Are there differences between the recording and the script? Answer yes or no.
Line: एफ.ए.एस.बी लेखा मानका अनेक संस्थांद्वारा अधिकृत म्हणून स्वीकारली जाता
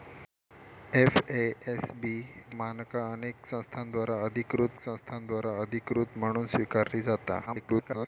yes